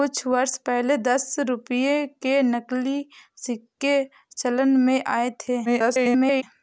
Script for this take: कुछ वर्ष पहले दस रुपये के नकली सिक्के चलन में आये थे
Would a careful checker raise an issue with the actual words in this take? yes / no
yes